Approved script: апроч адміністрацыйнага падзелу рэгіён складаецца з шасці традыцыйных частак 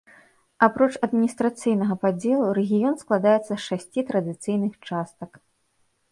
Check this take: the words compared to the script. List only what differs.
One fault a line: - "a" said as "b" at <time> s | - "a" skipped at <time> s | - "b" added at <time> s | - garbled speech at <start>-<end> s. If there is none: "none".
none